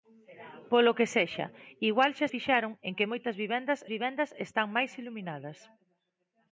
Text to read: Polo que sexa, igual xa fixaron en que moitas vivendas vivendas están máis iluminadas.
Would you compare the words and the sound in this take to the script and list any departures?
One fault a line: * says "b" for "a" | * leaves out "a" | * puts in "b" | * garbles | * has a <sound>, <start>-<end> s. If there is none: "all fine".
all fine